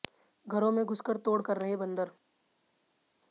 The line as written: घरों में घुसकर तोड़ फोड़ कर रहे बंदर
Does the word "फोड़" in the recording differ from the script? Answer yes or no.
yes